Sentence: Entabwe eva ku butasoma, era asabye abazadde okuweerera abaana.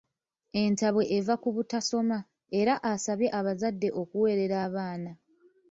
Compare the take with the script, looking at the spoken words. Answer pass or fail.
pass